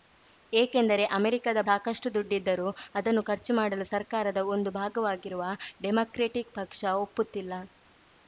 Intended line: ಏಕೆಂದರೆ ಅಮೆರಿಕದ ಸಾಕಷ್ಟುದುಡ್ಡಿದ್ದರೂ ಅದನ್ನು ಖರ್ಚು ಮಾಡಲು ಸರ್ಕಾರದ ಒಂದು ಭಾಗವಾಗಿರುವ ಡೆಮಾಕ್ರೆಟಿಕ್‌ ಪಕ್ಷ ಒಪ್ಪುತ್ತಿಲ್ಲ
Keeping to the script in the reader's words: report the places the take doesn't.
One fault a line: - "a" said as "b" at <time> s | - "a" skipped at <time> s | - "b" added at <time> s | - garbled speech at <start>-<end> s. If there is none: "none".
none